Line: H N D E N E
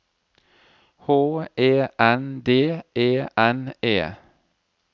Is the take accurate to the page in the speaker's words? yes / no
no